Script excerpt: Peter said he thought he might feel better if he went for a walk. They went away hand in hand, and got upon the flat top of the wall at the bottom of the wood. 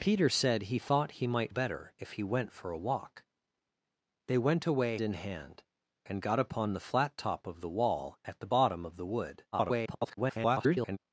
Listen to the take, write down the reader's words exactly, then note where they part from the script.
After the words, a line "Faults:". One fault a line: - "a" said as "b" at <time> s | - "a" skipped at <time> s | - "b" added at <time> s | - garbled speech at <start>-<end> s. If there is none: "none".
Peter said he thought he might better if he went for a walk. They went away in hand, and got upon the flat top of the wall at the bottom of the wood. [garbled]
Faults:
- "feel" skipped at 1.5 s
- "hand" skipped at 5.0 s
- garbled speech at 9.5-11.0 s